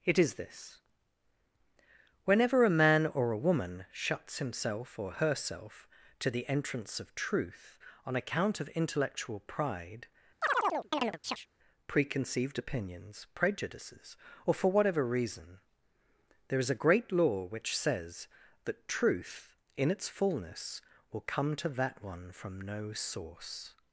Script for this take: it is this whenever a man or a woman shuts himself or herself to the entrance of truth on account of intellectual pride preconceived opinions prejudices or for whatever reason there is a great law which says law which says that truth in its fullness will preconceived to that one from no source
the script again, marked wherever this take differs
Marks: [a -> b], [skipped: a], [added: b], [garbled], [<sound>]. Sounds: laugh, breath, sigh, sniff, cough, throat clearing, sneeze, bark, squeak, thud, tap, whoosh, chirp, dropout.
it is this whenever a man or a woman shuts himself or herself to the entrance of truth on account of intellectual pride [chirp] preconceived opinions prejudices or for whatever reason there is a great law which says [skipped: law which says] that truth in its fullness will [preconceived -> come] to that one from no source